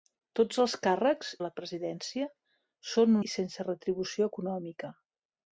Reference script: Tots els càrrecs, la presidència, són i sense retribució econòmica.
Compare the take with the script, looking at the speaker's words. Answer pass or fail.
pass